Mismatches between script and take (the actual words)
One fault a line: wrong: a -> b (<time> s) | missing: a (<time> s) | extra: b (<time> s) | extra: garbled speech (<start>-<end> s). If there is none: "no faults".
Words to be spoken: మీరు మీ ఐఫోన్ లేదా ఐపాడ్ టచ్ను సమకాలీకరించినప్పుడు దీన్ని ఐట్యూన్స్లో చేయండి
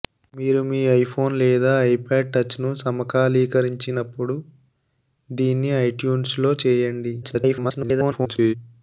extra: garbled speech (7.2-8.5 s)